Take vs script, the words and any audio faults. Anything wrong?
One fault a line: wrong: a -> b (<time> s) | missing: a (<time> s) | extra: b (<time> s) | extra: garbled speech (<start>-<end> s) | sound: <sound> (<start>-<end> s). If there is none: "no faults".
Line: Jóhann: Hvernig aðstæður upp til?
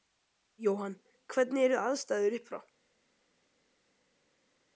extra: eru (1.7 s)
wrong: til -> frá (2.5 s)